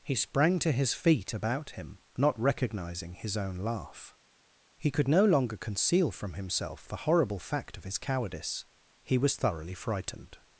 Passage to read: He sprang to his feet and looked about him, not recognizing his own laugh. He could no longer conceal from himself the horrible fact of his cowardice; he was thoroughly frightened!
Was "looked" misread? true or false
true